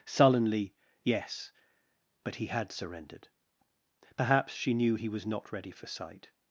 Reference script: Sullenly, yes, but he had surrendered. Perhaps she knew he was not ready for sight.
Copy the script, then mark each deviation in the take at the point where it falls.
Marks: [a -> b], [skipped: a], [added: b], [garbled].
Sullenly, yes, but he had surrendered. Perhaps she knew he was not ready for sight.